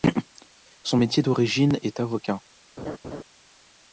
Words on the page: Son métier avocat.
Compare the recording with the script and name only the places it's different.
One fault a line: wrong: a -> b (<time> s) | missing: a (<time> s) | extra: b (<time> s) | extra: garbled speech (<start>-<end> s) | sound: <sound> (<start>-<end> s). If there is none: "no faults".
extra: d'origine est (1.2 s)
sound: laugh (2.8-3.2 s)